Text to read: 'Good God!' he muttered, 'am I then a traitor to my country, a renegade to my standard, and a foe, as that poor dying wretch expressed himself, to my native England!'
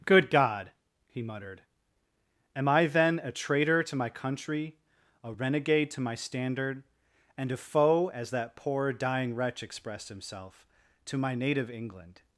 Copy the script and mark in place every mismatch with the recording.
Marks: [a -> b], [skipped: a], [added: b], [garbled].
'Good God!' he muttered, 'am I then a traitor to my country, a renegade to my standard, and a foe, as that poor dying wretch expressed himself, to my native England!'